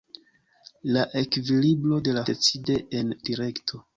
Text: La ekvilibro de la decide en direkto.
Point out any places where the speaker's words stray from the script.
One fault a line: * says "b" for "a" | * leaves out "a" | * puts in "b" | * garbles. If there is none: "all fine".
all fine